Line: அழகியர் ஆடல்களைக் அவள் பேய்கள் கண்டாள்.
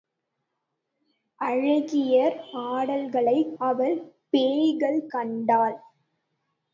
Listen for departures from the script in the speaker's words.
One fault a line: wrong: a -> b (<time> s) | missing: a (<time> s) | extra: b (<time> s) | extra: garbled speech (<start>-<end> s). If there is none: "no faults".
no faults